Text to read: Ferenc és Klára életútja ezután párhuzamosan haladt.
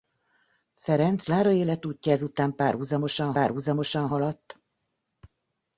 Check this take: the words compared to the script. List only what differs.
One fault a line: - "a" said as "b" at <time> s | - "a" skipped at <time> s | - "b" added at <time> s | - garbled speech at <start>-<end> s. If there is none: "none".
- "és" skipped at 1.2 s
- "párhuzamosan" added at 3.3 s